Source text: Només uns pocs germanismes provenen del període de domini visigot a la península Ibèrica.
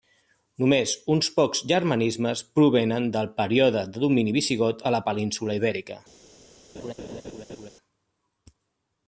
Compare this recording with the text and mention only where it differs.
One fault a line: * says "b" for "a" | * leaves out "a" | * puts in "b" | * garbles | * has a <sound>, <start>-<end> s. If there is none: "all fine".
* has a laugh, 6.7-7.7 s